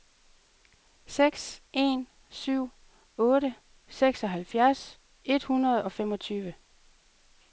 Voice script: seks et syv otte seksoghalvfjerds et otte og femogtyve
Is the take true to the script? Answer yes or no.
no